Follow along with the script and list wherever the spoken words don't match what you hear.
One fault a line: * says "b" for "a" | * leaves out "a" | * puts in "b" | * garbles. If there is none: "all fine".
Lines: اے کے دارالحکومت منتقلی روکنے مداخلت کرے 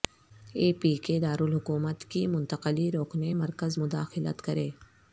* puts in "پی"
* puts in "کی"
* puts in "مرکز"